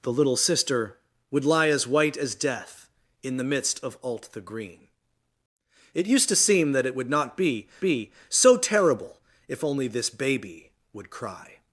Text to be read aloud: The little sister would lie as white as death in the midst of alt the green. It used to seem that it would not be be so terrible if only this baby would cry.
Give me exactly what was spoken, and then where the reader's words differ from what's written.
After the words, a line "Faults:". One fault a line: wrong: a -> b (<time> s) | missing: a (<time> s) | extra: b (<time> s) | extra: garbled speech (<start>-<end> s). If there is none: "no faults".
The little sister would lie as white as death in the midst of alt the green. It used to seem that it would not be be so terrible if only this baby would cry.
Faults:
no faults